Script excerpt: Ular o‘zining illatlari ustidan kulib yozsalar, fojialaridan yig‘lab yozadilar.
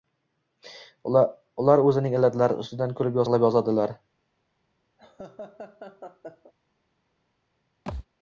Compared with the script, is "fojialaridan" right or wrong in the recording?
wrong